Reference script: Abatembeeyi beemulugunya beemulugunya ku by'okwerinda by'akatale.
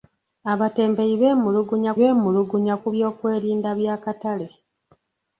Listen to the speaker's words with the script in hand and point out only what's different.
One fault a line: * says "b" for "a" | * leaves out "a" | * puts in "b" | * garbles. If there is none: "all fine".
all fine